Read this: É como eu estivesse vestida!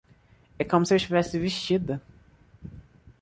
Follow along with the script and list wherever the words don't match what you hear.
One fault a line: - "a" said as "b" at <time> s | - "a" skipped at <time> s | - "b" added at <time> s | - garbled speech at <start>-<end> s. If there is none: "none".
- "se" added at 0.8 s